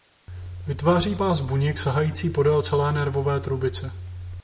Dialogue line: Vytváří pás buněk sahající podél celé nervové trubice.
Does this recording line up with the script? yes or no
yes